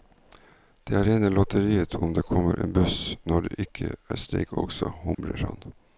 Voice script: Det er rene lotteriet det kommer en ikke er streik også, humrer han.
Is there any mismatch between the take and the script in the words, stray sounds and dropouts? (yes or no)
yes